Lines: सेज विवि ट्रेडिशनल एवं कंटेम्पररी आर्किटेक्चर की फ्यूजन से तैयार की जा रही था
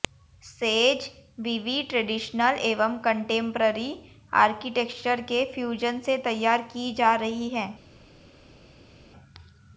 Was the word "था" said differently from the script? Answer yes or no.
yes